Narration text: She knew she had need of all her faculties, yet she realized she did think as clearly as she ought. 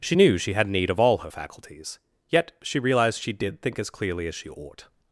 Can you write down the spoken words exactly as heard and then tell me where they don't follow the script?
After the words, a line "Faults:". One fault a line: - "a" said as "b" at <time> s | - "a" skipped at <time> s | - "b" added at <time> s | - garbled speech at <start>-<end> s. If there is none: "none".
She knew she had need of all her faculties, yet she realized she did think as clearly as she ought.
Faults:
none